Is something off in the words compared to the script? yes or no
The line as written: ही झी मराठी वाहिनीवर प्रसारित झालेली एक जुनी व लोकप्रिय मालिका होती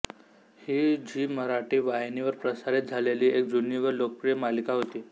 no